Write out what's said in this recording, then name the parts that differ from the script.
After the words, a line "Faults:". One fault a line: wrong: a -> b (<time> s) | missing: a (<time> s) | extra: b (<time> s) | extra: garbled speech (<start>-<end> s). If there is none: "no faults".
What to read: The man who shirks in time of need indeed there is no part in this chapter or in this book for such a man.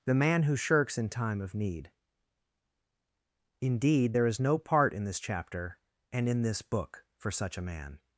The man who shirks in time of need indeed there is no part in this chapter and in this book for such a man.
Faults:
wrong: or -> and (6.1 s)